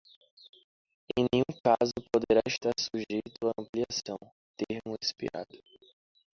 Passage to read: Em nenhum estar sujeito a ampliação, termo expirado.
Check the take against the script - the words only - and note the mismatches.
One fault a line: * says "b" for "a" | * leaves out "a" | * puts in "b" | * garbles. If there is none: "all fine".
* puts in "caso poderá"